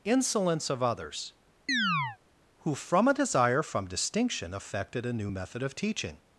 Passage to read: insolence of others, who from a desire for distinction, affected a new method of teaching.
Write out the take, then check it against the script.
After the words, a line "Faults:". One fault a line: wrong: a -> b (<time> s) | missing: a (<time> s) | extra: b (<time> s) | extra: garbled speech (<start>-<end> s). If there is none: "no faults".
insolence of others, who from a desire from distinction, affected a new method of teaching.
Faults:
wrong: for -> from (3.6 s)